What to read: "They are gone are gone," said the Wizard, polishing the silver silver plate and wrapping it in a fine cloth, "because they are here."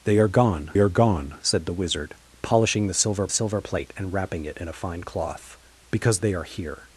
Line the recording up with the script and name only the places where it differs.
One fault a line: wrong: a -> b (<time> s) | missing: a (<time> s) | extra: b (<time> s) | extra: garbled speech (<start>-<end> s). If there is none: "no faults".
no faults